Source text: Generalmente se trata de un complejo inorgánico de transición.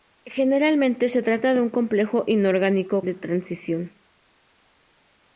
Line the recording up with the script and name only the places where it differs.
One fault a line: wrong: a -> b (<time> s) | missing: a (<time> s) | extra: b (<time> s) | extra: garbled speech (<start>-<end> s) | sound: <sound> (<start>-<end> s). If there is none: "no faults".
no faults